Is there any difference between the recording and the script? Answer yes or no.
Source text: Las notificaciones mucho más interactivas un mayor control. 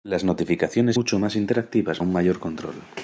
no